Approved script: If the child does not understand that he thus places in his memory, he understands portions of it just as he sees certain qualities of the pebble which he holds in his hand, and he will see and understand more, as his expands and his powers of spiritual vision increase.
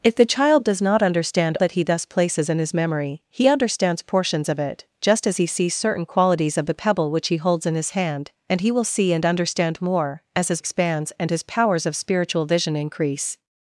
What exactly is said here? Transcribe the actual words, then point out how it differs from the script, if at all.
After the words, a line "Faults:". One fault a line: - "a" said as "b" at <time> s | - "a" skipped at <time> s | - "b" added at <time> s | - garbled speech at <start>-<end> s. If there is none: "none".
If the child does not understand that he thus places in his memory, he understands portions of it just as he sees certain qualities of the pebble which he holds in his hand, and he will see and understand more, as his expands and his powers of spiritual vision increase.
Faults:
none